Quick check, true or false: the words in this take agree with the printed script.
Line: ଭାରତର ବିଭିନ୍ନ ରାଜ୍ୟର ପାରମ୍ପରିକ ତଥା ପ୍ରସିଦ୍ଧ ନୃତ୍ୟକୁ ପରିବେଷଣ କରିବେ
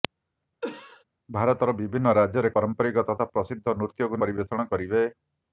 true